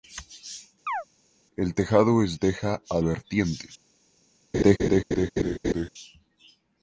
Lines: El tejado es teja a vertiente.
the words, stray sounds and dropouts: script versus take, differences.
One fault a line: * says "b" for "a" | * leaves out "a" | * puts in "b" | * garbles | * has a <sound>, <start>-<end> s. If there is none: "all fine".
* has a chirp, 0.9-1.0 s
* has a laugh, 4.5-5.9 s